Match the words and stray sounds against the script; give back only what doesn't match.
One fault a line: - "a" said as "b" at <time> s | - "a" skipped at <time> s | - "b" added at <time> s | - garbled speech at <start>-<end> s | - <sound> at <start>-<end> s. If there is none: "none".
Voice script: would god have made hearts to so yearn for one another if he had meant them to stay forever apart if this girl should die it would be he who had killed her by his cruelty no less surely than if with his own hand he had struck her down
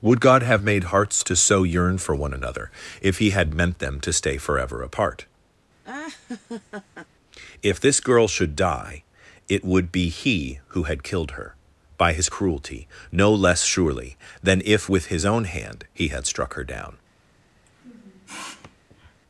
- laugh at 5.8-7.1 s
- sniff at 17.6-19.2 s